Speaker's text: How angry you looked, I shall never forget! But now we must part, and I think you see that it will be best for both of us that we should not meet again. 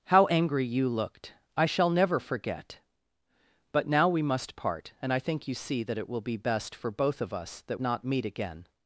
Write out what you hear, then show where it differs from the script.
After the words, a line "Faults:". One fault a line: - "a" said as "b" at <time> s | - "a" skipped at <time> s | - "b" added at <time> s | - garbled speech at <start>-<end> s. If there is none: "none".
How angry you looked, I shall never forget! But now we must part, and I think you see that it will be best for both of us that not meet again.
Faults:
- "we should" skipped at 7.8 s